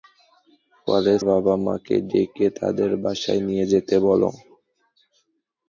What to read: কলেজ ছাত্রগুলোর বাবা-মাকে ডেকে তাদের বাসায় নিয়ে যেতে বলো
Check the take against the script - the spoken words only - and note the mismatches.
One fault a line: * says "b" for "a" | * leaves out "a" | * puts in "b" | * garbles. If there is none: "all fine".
* leaves out "ছাত্রগুলোর"